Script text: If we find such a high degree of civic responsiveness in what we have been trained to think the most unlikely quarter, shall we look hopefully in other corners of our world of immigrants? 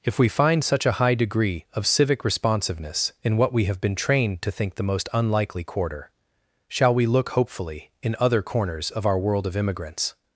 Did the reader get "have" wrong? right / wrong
right